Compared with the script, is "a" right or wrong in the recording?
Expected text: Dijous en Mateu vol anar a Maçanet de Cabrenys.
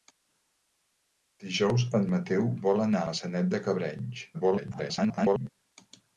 wrong